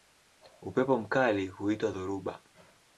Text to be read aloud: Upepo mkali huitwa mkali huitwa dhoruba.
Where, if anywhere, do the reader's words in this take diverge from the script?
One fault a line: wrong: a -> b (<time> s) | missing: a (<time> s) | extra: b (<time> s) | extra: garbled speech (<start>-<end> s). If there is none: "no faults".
missing: mkali huitwa (1.9 s)